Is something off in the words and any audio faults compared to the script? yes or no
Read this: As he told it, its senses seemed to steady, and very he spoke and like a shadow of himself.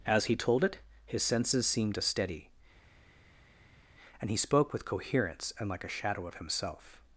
yes